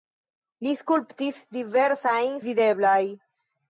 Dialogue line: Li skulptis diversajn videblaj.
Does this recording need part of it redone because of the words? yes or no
no